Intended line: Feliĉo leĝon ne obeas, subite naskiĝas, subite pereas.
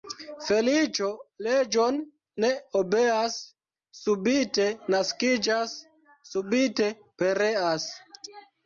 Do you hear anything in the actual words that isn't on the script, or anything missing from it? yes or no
no